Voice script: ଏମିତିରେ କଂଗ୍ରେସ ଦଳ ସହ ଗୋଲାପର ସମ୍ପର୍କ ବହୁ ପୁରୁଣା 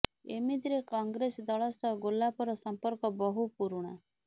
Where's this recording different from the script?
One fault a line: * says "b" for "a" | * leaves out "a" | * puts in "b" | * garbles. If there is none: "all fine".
all fine